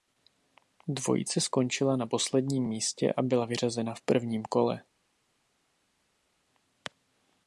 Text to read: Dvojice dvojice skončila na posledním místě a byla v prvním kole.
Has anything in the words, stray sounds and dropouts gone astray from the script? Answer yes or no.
yes